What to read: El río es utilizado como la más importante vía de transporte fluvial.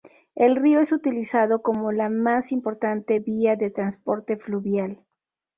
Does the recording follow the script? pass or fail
pass